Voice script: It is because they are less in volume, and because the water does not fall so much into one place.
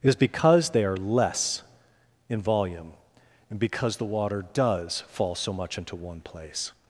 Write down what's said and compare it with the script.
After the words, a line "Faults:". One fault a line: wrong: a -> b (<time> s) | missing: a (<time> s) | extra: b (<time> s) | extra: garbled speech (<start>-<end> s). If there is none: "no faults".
It is because they are less in volume, and because the water does fall so much into one place.
Faults:
missing: not (5.0 s)